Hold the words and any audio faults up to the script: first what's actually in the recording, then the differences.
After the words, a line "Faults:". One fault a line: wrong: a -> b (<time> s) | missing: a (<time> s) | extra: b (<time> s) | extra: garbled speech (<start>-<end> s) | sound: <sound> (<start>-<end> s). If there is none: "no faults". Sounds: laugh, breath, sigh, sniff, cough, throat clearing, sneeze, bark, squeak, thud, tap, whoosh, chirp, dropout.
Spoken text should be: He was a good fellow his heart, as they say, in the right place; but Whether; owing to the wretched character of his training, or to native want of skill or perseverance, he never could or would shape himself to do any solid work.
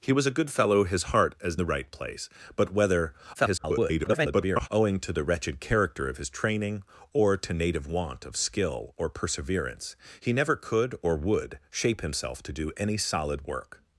He was a good fellow his heart, as the right place; but Whether; [garbled] owing to the wretched character of his training, or to native want of skill or perseverance, he never could or would shape himself to do any solid work.
Faults:
missing: they say in (1.6 s)
extra: garbled speech (3.3-4.7 s)